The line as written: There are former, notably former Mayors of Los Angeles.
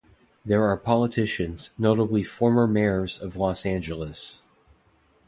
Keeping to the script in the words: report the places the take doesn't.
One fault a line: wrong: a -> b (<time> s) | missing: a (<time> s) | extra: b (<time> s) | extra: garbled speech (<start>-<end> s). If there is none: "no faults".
wrong: former -> politicians (0.8 s)